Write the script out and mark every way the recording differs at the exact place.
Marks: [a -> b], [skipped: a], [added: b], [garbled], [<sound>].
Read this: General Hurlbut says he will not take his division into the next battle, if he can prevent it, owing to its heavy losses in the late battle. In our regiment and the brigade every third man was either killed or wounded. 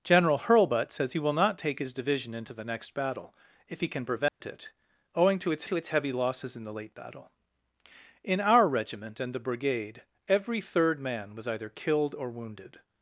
General Hurlbut says he will not take his division into the next battle, if he can prevent [dropout] it, owing to its [added: to its] heavy losses in the late battle. In our regiment and the brigade every third man was either killed or wounded.